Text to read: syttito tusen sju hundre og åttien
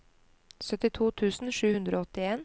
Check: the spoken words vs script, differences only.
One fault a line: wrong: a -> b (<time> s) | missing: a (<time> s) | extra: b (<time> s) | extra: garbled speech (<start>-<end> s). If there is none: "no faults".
no faults